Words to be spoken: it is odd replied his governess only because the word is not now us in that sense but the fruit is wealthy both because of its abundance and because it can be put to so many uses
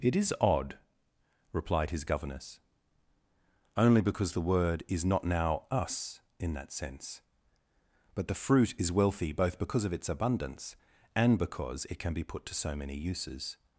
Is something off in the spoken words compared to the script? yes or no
no